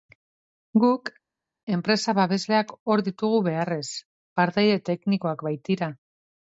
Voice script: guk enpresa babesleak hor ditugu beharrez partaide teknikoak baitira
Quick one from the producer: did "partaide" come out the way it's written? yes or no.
yes